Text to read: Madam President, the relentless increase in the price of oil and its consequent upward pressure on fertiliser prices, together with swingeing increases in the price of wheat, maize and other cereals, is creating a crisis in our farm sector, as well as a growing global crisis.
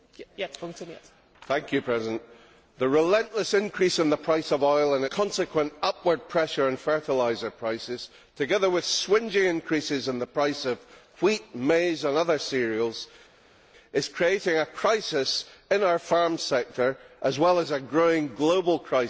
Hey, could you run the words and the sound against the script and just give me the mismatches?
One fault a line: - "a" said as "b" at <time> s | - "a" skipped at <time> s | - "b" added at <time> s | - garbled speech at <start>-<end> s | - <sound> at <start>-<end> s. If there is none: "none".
- "its" skipped at 5.0 s